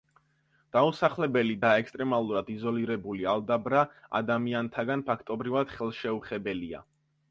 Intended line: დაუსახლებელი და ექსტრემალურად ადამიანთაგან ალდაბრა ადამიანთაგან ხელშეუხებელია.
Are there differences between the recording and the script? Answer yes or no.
yes